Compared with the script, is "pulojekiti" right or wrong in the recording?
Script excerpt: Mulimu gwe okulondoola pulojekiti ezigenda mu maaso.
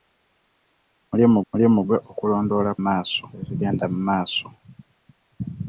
wrong